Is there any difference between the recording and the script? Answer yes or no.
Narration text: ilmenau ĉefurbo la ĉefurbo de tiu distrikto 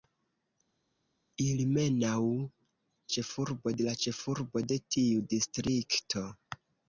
no